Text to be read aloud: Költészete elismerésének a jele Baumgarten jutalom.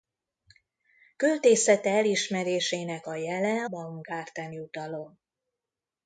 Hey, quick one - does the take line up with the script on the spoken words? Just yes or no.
yes